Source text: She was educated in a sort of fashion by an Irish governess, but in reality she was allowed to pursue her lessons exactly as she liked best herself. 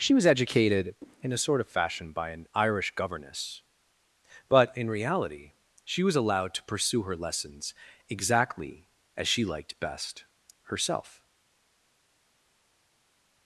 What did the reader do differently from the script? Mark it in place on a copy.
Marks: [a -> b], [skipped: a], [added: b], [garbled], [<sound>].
She was educated in a sort of fashion by an Irish governess, but in reality she was allowed to pursue her lessons exactly as she liked best herself.